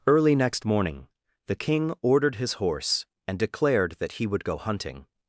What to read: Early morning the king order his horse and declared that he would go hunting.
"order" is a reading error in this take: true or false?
true